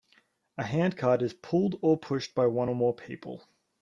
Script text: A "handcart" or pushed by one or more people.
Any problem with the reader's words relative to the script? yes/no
yes